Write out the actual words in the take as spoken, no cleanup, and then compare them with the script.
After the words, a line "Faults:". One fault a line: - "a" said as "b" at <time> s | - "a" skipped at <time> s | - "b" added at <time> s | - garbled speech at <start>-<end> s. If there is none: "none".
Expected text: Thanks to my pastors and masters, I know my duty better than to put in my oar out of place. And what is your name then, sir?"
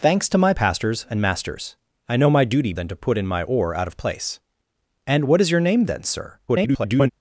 Thanks to my pastors and masters, I know my duty than to put in my oar out of place. And what is your name then, sir?" [garbled]
Faults:
- "better" skipped at 2.7 s
- garbled speech at 6.5-7.1 s